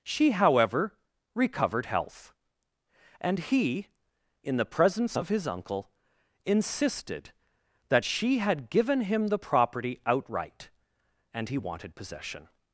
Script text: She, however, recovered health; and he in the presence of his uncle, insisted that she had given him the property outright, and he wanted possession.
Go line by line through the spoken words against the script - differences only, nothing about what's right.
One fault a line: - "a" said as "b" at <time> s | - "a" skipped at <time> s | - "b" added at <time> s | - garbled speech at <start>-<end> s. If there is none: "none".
none